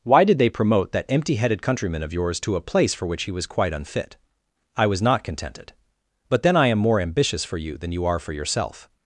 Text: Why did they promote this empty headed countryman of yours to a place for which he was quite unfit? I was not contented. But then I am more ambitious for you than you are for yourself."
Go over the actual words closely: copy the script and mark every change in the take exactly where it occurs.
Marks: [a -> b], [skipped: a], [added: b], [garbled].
Why did they promote [this -> that] empty headed countryman of yours to a place for which he was quite unfit? I was not contented. But then I am more ambitious for you than you are for yourself."